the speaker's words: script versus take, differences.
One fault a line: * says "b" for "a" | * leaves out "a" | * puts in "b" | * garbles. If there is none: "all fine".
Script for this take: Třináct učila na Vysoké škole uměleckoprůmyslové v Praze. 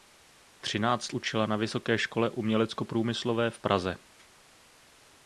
all fine